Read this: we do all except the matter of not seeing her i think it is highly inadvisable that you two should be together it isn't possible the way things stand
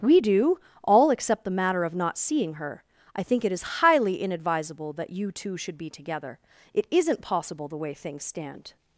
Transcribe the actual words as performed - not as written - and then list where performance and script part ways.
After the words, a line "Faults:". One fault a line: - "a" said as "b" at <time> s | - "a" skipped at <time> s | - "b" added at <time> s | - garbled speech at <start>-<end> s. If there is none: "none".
we do all except the matter of not seeing her i think it is highly inadvisable that you two should be together it isn't possible the way things stand
Faults:
none